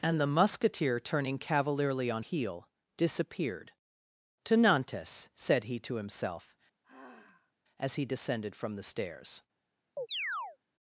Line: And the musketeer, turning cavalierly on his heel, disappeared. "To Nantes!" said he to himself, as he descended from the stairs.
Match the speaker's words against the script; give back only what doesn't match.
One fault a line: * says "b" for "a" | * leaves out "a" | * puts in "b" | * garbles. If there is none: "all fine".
* leaves out "his"